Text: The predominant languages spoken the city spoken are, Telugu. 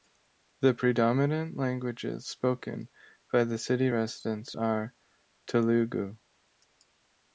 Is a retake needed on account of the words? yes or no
yes